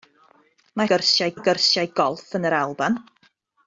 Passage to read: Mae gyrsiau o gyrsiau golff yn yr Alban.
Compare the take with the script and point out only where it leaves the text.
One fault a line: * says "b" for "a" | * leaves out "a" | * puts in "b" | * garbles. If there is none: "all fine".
all fine